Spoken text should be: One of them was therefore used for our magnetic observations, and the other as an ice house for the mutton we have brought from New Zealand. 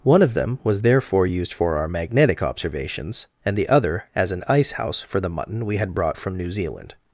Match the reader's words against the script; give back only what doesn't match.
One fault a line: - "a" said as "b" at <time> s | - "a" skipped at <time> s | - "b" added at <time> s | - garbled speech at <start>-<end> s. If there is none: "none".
- "have" said as "had" at 5.8 s